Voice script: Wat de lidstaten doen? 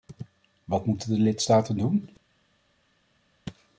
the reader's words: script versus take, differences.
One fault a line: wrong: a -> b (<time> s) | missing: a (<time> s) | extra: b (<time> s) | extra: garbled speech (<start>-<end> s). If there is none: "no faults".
extra: moeten (0.8 s)